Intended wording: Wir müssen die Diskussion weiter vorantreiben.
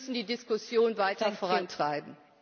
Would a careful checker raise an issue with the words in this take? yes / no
no